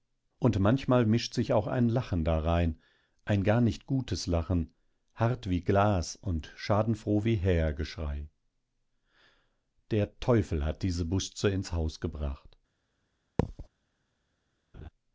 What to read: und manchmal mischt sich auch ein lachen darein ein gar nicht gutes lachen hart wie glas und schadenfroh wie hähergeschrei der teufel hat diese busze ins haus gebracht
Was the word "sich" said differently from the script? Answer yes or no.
no